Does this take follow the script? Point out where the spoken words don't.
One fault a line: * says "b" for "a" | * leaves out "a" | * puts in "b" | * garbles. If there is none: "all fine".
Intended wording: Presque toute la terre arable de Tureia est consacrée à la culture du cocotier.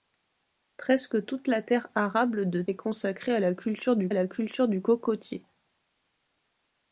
* leaves out "Tureia"
* puts in "la culture du"